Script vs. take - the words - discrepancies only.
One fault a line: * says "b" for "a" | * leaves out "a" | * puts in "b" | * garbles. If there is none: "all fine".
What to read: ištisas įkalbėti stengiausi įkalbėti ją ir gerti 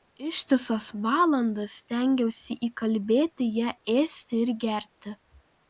* says "valandas" for "įkalbėti"
* puts in "ėsti"